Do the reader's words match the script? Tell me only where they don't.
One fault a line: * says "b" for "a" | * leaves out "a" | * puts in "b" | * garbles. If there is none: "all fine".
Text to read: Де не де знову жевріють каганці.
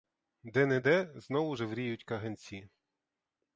all fine